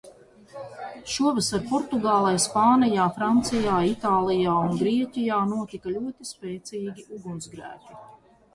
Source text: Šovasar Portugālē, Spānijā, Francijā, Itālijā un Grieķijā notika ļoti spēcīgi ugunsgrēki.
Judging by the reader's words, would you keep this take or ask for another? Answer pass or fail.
pass